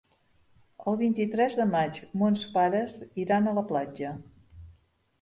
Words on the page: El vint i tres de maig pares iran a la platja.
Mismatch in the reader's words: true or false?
true